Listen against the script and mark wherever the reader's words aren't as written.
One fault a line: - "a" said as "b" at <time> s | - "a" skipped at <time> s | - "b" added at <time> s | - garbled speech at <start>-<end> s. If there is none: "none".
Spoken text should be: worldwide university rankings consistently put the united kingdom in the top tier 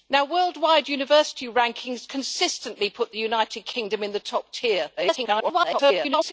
- garbled speech at 5.0-6.3 s